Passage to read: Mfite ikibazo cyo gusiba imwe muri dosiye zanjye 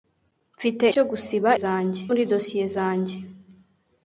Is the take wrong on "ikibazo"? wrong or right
wrong